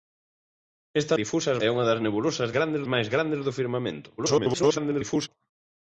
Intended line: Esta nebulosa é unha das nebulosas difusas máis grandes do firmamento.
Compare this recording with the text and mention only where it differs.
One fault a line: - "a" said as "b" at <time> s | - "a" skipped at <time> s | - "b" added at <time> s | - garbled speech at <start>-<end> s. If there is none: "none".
- "nebulosa" said as "difusas" at 1.2 s
- "difusas" said as "grandes" at 2.6 s
- garbled speech at 4.2-5.3 s